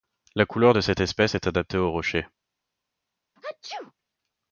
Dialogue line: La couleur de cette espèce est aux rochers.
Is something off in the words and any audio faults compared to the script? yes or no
yes